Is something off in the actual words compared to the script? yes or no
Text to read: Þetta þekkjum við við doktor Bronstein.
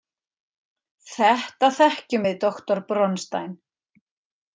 yes